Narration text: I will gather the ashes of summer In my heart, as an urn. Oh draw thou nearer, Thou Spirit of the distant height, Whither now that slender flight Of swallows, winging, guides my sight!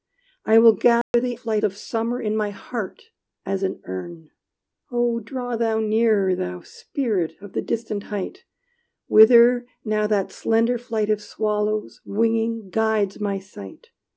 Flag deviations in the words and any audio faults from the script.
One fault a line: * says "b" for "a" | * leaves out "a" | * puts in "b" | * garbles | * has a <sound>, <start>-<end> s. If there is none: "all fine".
* has a dropout, 1.0-1.1 s
* says "flight" for "ashes"